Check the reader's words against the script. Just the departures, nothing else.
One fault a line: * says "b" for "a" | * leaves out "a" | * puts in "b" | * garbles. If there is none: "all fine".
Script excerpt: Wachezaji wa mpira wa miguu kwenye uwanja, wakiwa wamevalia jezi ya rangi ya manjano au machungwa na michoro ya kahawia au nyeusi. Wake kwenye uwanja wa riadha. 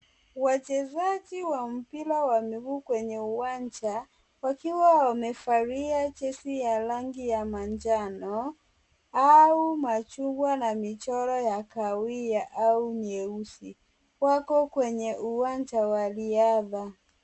* says "Wako" for "Wake"